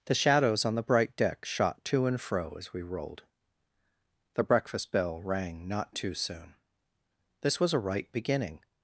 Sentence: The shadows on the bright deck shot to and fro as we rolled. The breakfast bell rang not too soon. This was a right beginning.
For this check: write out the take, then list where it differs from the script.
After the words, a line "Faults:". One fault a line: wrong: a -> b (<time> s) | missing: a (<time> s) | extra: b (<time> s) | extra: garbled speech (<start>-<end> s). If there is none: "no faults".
The shadows on the bright deck shot to and fro as we rolled. The breakfast bell rang not too soon. This was a right beginning.
Faults:
no faults